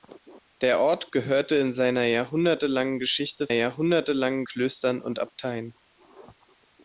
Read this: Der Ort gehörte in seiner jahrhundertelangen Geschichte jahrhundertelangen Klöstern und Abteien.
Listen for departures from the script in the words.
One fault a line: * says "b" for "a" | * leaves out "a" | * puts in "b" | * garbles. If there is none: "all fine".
all fine